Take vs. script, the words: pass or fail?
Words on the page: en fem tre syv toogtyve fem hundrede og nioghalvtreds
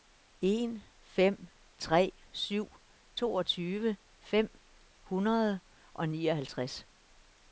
pass